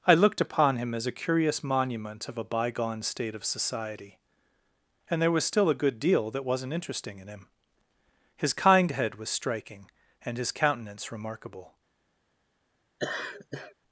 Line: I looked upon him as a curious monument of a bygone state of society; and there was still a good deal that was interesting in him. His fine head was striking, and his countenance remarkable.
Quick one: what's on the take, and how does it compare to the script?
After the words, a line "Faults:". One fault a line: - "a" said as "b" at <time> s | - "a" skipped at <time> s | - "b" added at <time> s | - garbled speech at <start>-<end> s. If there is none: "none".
I looked upon him as a curious monument of a bygone state of society; and there was still a good deal that wasn't interesting in him. His kind head was striking, and his countenance remarkable.
Faults:
- "was" said as "wasn't" at 6.5 s
- "fine" said as "kind" at 8.5 s